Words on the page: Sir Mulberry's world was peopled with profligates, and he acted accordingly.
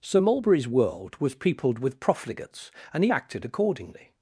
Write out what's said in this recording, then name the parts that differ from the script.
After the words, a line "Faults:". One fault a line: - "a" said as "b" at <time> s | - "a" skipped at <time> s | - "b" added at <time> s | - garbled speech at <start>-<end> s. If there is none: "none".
Sir Mulberry's world was peopled with profligates, and he acted accordingly.
Faults:
none